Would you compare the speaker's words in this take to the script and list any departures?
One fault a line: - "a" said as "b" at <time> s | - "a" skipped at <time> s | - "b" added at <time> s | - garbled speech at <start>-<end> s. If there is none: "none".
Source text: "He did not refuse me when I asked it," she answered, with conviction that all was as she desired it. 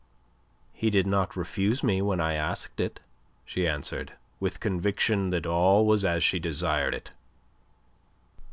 none